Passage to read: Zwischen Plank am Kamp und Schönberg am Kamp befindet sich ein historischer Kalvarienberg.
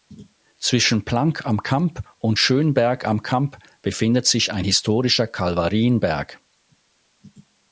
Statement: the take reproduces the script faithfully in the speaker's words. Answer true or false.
true